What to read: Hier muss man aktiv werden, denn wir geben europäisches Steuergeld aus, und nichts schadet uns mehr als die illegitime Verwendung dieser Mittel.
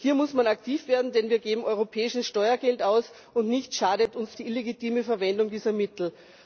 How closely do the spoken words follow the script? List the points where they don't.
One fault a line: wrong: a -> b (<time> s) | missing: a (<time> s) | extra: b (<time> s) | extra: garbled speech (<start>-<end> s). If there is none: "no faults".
missing: mehr als (4.3 s)